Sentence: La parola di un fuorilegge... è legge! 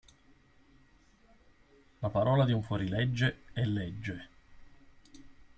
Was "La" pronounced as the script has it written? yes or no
yes